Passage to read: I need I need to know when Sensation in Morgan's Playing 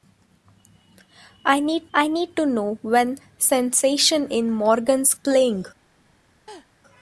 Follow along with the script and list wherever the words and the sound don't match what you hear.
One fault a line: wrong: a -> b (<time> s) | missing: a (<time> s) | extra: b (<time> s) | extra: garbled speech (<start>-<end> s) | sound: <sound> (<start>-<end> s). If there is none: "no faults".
sound: laugh (6.5-6.7 s)